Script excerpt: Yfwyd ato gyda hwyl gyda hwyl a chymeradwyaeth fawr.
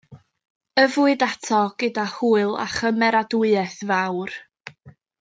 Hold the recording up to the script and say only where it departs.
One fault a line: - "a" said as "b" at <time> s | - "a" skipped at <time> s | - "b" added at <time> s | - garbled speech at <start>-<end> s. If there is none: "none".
- "gyda hwyl" skipped at 2.6 s